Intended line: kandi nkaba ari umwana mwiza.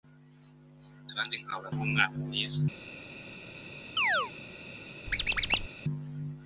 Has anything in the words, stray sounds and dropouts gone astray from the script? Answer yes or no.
yes